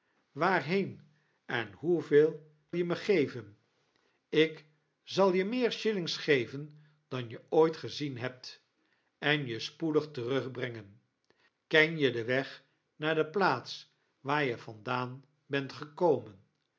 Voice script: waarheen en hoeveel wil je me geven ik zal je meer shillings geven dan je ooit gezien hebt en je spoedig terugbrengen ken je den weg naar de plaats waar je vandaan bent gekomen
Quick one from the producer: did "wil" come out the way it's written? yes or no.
no